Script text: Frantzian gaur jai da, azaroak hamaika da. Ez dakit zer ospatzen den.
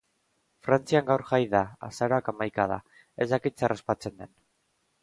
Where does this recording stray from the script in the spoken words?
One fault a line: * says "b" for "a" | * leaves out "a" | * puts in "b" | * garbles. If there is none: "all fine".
all fine